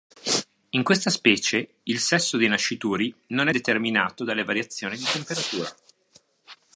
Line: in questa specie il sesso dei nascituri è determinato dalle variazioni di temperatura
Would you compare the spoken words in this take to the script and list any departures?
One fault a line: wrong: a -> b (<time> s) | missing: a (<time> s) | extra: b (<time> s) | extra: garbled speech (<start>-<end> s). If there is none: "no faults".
extra: non (3.3 s)